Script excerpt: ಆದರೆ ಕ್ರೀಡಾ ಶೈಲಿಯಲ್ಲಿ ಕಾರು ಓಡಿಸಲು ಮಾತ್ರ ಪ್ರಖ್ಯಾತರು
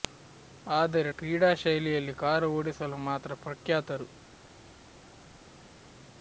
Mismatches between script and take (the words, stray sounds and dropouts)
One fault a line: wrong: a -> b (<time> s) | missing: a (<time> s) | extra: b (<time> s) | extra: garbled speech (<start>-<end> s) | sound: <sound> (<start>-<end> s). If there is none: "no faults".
no faults